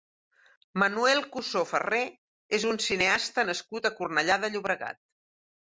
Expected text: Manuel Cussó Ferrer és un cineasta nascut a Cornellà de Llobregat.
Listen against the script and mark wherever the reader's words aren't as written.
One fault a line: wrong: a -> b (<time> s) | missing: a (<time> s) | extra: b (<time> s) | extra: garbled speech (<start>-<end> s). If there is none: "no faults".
no faults